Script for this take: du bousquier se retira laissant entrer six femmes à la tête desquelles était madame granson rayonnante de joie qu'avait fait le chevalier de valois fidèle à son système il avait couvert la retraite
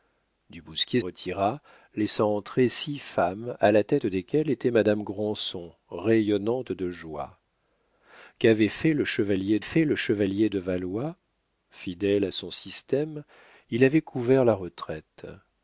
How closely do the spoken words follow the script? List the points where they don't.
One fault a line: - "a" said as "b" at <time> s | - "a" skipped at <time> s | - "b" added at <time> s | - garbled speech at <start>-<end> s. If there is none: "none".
- "se" skipped at 1.0 s
- "fait le chevalier" added at 9.6 s